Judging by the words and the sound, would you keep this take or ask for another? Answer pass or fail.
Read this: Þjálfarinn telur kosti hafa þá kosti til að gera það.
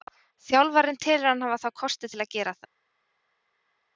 fail